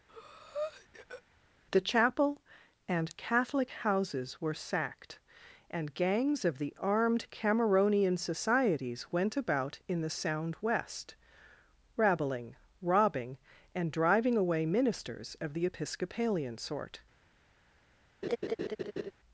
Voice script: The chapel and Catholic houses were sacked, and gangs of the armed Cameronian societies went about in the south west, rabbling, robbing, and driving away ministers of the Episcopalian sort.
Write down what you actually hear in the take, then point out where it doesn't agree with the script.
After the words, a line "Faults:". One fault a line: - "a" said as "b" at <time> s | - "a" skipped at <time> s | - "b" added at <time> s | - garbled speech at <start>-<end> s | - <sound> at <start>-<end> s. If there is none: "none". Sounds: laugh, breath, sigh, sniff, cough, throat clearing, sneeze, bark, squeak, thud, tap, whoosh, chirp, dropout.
The chapel and Catholic houses were sacked, and gangs of the armed Cameronian societies went about in the sound west, rabbling, robbing, and driving away ministers of the Episcopalian sort.
Faults:
- breath at 0.1-1.2 s
- "south" said as "sound" at 10.1 s
- laugh at 18.2-19.1 s